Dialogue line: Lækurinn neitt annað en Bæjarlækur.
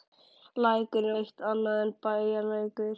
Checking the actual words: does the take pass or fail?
pass